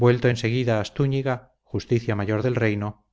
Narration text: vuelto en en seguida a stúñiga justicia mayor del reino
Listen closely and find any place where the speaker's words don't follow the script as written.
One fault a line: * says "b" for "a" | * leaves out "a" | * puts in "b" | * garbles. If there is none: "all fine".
* leaves out "en"